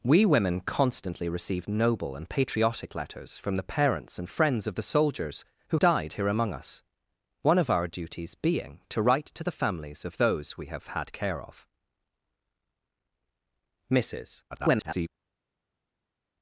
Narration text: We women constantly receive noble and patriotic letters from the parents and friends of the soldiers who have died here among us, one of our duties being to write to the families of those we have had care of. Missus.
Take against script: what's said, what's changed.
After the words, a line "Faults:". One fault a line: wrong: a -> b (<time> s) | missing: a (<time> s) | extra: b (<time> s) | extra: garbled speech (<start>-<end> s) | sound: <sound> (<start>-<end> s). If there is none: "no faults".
We women constantly receive noble and patriotic letters from the parents and friends of the soldiers who died here among us, one of our duties being to write to the families of those we have had care of. Missus. [garbled]
Faults:
missing: have (5.8 s)
extra: garbled speech (14.5-15.1 s)